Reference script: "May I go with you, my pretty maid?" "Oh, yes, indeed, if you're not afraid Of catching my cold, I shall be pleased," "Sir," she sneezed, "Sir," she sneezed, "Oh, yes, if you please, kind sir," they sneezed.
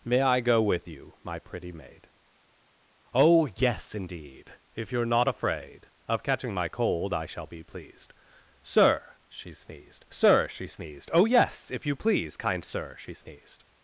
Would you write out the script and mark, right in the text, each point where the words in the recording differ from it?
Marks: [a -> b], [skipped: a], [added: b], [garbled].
"May I go with you, my pretty maid?" "Oh, yes, indeed, if you're not afraid Of catching my cold, I shall be pleased," "Sir," she sneezed, "Sir," she sneezed, "Oh, yes, if you please, kind sir," [they -> she] sneezed.